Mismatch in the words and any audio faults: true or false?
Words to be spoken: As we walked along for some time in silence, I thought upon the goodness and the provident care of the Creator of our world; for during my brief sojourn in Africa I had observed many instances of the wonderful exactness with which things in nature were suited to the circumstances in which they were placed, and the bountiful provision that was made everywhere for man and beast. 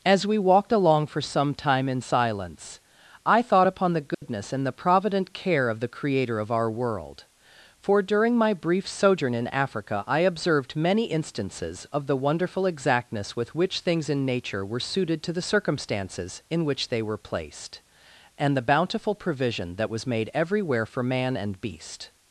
true